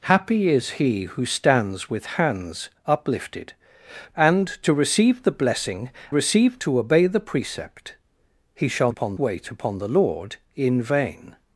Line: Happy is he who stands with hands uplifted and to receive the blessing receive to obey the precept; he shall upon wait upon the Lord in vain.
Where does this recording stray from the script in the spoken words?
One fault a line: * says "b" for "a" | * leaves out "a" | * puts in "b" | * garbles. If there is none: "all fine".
all fine